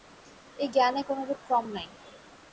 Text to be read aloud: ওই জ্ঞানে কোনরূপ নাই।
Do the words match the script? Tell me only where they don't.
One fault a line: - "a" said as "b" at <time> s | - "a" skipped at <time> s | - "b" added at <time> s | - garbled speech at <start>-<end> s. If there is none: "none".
- "ওই" said as "এই" at 0.6 s
- "ক্রম" added at 1.5 s